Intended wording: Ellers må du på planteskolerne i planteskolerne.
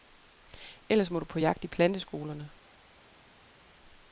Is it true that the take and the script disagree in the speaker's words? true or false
true